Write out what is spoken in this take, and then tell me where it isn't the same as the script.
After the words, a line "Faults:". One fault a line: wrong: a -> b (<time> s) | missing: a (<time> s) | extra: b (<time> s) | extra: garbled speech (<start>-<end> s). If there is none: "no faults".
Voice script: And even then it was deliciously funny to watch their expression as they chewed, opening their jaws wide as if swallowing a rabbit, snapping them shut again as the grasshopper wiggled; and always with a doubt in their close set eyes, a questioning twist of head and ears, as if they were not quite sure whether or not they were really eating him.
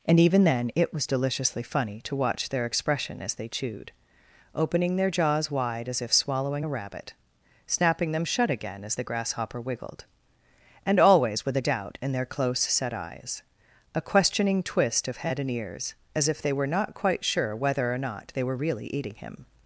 And even then it was deliciously funny to watch their expression as they chewed, opening their jaws wide as if swallowing a rabbit, snapping them shut again as the grasshopper wiggled; and always with a doubt in their close set eyes, a questioning twist of head and ears, as if they were not quite sure whether or not they were really eating him.
Faults:
no faults